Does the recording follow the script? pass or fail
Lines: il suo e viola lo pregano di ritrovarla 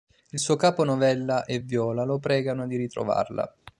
fail